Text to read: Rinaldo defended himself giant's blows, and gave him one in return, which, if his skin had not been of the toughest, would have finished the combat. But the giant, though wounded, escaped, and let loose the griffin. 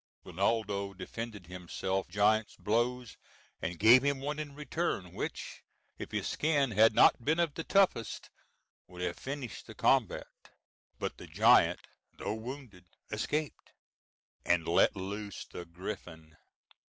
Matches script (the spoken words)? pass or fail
pass